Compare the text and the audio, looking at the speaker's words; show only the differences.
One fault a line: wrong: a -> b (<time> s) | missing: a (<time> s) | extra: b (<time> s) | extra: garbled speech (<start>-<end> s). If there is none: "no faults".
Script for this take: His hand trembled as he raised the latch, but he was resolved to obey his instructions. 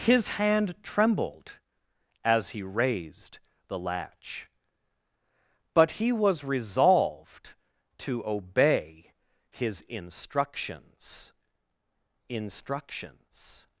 extra: instructions (12.3 s)